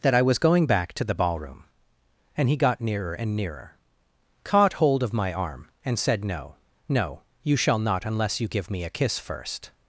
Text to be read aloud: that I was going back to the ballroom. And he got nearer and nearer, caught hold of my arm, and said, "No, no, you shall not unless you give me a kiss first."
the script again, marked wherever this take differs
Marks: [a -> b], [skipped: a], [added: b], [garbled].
that I was going back to the ballroom. And he got nearer and nearer, caught hold of my arm, and said, "No, no, you shall not unless you give me a kiss first."